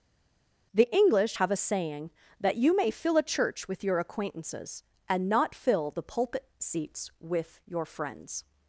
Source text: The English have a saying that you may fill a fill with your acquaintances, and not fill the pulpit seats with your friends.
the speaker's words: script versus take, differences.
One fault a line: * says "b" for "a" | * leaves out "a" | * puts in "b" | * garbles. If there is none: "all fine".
* says "church" for "fill"